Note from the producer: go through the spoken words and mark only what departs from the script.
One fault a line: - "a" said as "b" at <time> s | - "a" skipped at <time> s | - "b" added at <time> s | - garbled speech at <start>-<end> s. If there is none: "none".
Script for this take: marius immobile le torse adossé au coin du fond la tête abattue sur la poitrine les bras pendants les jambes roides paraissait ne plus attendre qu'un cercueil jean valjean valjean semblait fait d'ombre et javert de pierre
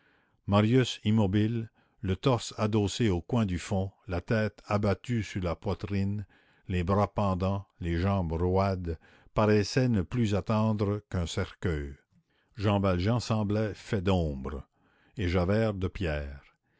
- "valjean" skipped at 13.2 s